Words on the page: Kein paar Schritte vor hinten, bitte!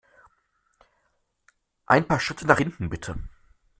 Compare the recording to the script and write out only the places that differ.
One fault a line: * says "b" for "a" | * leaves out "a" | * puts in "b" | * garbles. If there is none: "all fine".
* says "Ein" for "Kein"
* says "nach" for "vor"